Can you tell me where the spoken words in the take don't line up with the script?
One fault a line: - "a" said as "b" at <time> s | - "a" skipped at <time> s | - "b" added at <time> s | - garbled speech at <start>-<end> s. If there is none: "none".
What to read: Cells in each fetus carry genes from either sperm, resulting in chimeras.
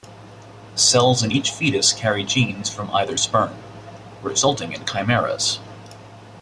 none